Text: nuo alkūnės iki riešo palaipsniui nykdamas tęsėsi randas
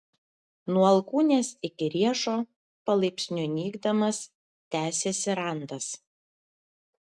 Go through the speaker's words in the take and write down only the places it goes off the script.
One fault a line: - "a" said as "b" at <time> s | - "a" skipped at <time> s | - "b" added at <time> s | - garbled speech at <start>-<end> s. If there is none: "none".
none